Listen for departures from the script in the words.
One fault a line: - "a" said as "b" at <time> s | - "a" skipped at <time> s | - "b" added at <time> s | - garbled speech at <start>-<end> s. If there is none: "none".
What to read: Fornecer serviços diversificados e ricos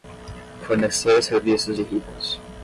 - "diversificados" skipped at 1.8 s